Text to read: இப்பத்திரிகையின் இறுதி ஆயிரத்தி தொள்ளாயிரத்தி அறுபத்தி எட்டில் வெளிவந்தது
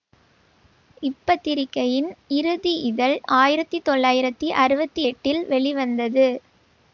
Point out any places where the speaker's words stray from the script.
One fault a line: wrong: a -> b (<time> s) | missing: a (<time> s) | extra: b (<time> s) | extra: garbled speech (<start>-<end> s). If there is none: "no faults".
extra: இதழ் (2.9 s)